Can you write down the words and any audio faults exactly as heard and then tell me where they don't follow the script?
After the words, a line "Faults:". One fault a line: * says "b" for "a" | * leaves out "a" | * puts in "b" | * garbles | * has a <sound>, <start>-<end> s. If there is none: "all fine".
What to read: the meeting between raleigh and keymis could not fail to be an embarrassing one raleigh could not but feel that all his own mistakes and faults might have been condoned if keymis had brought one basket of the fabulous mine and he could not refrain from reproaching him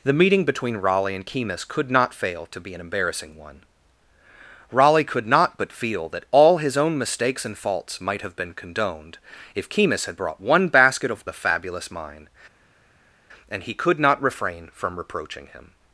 the meeting between raleigh and keymis could not fail to be an embarrassing one raleigh could not but feel that all his own mistakes and faults might have been condoned if keymis had brought one basket of the fabulous mine and he could not refrain from reproaching him
Faults:
all fine